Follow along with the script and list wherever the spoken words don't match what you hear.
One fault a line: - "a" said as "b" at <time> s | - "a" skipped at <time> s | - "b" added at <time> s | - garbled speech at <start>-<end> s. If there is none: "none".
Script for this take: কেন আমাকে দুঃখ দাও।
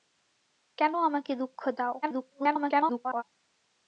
- garbled speech at 2.0-3.2 s